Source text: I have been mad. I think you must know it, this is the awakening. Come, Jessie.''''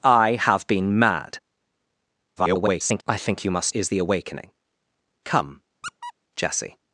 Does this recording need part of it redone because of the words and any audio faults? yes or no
yes